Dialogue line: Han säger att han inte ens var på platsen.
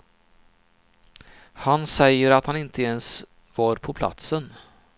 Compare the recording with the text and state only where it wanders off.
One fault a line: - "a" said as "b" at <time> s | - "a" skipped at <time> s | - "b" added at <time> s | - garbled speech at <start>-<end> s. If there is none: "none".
none